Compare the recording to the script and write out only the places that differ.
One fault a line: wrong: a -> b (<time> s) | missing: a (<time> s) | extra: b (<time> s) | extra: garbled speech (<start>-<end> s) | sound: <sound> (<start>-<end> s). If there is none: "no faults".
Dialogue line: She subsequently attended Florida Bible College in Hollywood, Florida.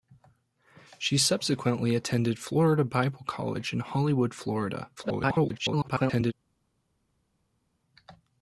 extra: garbled speech (5.0-6.3 s)